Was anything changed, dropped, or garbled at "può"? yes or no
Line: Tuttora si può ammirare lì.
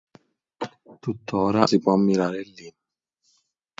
no